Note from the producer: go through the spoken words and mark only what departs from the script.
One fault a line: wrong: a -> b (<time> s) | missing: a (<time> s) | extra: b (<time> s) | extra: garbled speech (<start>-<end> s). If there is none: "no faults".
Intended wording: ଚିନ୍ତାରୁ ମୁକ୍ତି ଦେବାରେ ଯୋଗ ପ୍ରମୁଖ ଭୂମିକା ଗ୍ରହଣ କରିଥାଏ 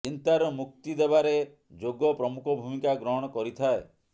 no faults